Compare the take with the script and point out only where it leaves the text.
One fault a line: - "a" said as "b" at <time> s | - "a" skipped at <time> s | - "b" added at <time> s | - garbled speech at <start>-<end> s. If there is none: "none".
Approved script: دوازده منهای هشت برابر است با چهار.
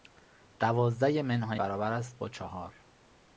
- "هشت" skipped at 1.6 s